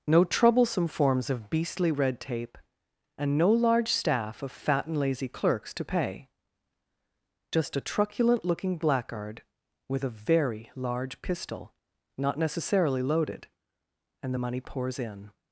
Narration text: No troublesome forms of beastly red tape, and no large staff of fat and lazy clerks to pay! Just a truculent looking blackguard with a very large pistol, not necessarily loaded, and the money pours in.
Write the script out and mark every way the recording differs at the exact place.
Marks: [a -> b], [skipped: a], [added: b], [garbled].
No troublesome forms of beastly red tape, and no large staff of fat and lazy clerks to pay! Just a truculent looking blackguard with a very large pistol, not necessarily loaded, and the money pours in.